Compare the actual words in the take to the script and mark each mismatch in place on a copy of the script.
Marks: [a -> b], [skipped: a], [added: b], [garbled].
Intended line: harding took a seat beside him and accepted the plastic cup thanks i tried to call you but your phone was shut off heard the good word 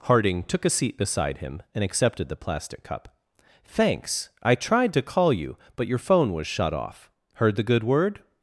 harding took a seat beside him and accepted the plastic cup thanks i tried to call you but your phone was shut off heard the good word